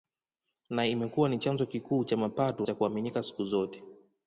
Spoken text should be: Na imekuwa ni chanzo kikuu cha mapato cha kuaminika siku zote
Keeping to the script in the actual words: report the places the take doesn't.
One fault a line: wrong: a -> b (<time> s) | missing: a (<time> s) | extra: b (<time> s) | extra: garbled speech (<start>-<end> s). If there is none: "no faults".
no faults